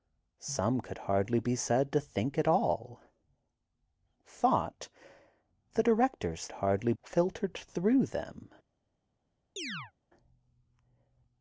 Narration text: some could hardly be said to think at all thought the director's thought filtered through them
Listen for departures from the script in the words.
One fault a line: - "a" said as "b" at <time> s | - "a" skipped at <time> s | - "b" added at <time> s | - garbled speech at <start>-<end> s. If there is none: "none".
- "thought" said as "hardly" at 6.5 s